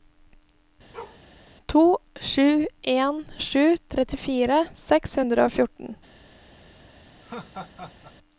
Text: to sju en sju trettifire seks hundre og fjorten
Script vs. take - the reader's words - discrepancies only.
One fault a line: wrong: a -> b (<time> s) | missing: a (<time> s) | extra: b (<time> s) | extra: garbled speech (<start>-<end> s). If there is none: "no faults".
no faults